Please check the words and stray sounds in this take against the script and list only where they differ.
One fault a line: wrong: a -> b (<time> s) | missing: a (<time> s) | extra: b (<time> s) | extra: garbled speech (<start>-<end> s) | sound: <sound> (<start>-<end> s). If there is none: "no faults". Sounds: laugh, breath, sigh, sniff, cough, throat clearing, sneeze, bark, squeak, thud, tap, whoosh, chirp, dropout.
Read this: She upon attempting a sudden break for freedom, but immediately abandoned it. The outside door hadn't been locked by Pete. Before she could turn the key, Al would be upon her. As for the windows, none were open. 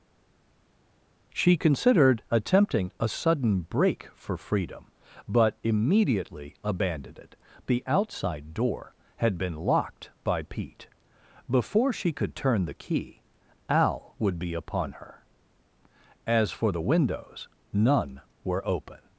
wrong: upon -> considered (1.6 s)
wrong: hadn't -> had (9.2 s)